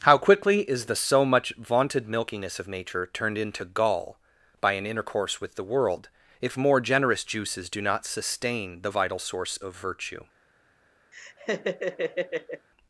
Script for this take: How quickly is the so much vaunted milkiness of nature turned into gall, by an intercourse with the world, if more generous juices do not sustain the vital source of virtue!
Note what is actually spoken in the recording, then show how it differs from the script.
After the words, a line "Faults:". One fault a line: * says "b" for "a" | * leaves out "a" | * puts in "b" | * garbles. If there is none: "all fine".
How quickly is the so much vaunted milkiness of nature turned into gall, by an intercourse with the world, if more generous juices do not sustain the vital source of virtue!
Faults:
all fine